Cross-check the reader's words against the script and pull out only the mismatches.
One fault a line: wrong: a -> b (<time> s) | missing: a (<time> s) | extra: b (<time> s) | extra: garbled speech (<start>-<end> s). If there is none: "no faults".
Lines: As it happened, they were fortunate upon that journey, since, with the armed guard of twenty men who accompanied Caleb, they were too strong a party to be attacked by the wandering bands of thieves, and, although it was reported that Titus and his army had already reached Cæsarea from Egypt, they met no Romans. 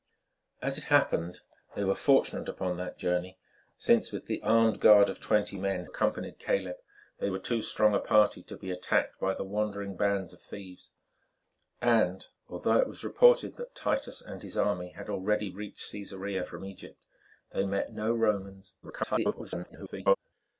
missing: who (5.8 s)
extra: garbled speech (18.8-20.2 s)